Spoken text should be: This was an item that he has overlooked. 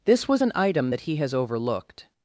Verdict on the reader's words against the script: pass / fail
pass